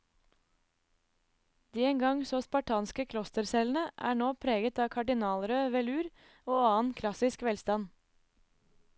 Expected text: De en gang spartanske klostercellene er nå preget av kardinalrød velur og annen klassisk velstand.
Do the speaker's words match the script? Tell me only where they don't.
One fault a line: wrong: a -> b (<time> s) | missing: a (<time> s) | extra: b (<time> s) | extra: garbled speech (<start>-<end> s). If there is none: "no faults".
extra: så (2.3 s)